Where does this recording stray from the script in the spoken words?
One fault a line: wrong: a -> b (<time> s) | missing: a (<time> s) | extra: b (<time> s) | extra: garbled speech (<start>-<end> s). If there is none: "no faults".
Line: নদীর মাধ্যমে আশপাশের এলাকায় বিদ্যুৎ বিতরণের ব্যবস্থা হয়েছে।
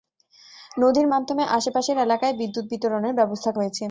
no faults